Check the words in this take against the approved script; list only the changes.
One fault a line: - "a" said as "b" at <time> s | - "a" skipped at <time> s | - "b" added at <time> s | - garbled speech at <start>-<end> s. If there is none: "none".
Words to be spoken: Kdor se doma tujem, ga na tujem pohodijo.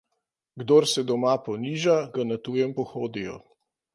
- "tujem" said as "poniža" at 1.5 s